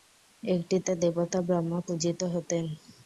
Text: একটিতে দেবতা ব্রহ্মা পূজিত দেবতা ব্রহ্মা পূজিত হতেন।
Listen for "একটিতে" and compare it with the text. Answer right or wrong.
right